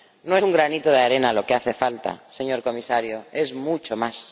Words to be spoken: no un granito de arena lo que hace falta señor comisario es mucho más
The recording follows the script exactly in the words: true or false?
true